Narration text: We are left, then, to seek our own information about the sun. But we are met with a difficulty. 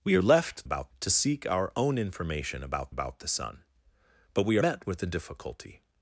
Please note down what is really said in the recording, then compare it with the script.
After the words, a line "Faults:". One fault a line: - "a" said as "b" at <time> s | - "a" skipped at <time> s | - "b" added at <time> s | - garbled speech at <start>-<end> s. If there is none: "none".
We are left, about, to seek our own information about about the sun. But we met with a difficulty.
Faults:
- "then" said as "about" at 0.6 s
- "about" added at 2.9 s
- "are" skipped at 4.6 s